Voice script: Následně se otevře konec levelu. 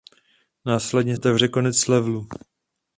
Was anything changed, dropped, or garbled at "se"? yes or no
yes